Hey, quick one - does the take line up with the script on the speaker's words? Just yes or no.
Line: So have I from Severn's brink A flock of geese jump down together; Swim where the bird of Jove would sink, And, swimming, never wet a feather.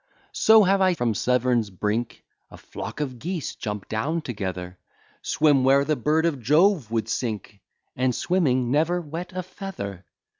yes